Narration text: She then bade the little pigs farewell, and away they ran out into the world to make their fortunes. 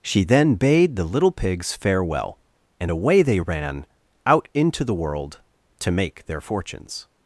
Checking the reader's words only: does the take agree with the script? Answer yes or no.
yes